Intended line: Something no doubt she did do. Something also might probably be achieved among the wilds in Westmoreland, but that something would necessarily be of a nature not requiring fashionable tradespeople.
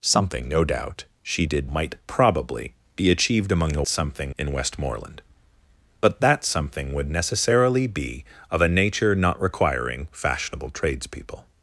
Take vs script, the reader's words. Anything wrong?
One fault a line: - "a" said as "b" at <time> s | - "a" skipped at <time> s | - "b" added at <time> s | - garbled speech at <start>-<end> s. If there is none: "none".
- "do Something also" skipped at 1.7 s
- "wilds" said as "something" at 3.9 s